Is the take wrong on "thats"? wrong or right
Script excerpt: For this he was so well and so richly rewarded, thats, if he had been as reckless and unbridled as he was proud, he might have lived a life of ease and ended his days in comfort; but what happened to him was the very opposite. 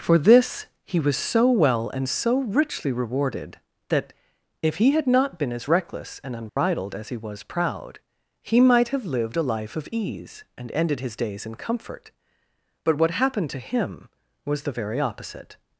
wrong